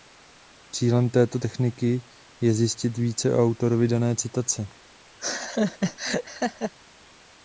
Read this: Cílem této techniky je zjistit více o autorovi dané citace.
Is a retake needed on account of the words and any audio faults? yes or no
yes